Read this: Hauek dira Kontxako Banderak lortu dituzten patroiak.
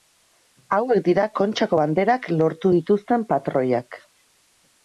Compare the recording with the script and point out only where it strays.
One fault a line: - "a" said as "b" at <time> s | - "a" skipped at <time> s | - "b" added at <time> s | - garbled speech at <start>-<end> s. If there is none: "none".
none